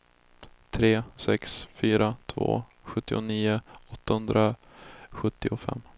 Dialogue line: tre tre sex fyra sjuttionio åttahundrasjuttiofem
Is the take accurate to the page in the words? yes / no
no